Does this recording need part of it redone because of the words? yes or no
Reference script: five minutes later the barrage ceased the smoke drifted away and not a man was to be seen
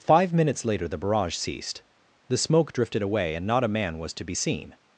no